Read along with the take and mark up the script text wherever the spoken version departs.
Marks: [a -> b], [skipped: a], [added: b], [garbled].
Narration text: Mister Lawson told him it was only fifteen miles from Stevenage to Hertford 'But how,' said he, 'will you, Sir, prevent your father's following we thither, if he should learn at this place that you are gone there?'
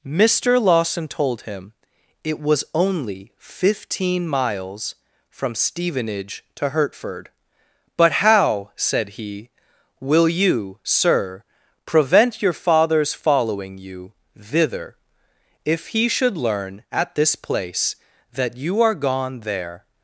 Mister Lawson told him it was only fifteen miles from Stevenage to Hertford 'But how,' said he, 'will you, Sir, prevent your father's following [we -> you] thither, if he should learn at this place that you are gone there?'